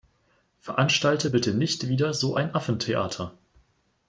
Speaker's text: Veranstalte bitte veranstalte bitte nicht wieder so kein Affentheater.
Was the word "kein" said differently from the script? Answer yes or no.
yes